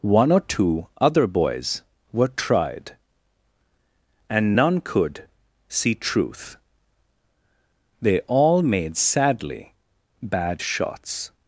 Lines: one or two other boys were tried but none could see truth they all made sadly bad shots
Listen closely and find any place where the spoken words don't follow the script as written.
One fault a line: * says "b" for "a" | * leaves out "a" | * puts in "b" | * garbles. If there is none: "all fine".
* says "and" for "but"